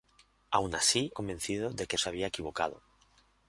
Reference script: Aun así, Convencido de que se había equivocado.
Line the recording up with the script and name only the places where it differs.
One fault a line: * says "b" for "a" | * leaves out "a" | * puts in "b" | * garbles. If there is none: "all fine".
all fine